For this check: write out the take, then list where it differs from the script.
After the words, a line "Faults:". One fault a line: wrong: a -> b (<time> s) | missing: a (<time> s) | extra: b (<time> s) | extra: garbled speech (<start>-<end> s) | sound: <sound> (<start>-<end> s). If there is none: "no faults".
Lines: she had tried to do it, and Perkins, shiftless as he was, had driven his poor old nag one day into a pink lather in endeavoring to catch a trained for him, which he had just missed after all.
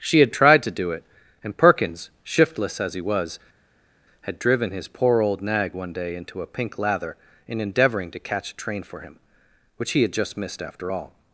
she had tried to do it, and Perkins, shiftless as he was, had driven his poor old nag one day into a pink lather in endeavoring to catch a train for him, which he had just missed after all.
Faults:
wrong: trained -> train (8.5 s)